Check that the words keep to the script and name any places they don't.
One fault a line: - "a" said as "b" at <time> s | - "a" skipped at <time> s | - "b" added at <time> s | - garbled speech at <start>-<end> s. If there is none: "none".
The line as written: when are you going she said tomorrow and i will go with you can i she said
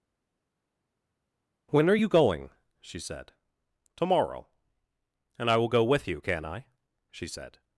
none